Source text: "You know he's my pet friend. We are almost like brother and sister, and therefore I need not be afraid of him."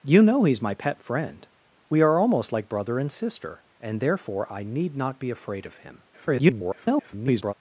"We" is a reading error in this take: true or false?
false